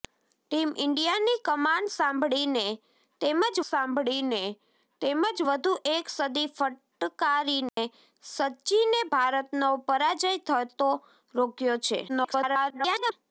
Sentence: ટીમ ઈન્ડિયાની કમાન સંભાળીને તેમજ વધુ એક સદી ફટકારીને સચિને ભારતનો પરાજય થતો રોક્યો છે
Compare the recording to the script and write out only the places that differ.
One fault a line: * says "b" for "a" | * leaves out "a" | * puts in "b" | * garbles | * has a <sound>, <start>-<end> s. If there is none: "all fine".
* puts in "સંભાળીને તેમજ"
* has a dropout, 7.7-7.8 s
* garbles